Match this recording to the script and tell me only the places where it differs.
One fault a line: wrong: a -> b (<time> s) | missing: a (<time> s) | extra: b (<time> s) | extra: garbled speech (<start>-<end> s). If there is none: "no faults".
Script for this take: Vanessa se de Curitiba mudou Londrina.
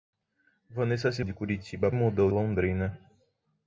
no faults